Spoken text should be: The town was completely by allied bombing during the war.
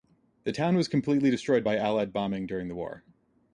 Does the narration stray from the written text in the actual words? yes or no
yes